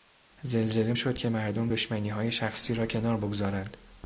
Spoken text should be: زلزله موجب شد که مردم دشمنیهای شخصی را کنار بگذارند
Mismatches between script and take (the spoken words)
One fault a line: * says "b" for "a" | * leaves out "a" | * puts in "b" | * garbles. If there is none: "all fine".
* leaves out "موجب"